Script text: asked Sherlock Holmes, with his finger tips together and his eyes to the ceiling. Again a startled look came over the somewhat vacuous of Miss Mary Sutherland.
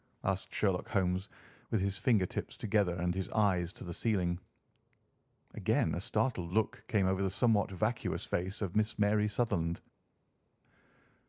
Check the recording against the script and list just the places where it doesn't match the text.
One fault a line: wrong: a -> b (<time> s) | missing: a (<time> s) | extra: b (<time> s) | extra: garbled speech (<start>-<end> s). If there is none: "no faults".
extra: face (8.2 s)